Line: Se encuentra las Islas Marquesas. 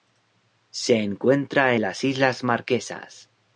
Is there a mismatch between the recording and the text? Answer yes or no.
no